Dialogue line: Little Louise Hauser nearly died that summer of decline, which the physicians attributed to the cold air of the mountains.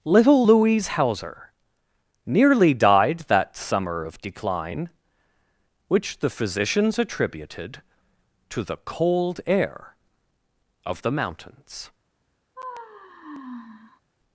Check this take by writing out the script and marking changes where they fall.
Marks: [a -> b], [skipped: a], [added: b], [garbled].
Little Louise Hauser nearly died that summer of decline, which the physicians attributed to the cold air of the mountains.